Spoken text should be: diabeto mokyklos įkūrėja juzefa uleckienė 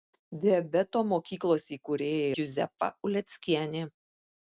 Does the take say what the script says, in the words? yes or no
yes